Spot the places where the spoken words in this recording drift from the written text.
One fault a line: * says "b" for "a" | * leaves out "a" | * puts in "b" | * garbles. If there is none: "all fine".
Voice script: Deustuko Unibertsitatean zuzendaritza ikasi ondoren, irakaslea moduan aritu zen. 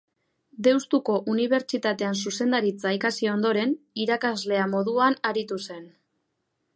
all fine